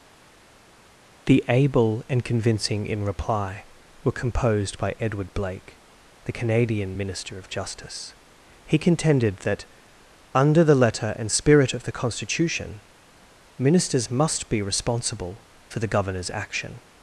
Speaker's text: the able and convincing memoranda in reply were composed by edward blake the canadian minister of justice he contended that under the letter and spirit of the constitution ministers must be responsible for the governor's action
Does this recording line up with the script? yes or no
no